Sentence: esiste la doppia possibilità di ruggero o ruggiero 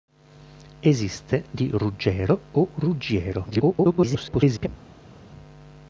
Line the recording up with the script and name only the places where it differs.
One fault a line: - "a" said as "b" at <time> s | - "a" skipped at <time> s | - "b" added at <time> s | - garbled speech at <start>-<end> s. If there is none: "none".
- "la doppia possibilità" skipped at 1.4 s
- garbled speech at 3.5-4.7 s